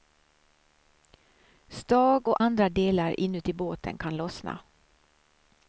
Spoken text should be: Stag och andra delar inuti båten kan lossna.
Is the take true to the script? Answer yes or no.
yes